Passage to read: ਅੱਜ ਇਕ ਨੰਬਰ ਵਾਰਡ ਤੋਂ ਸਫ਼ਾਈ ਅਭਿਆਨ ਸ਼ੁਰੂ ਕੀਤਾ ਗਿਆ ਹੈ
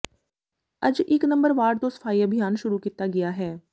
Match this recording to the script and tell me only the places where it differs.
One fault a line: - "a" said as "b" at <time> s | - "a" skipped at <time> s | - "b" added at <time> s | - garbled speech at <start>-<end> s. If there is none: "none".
none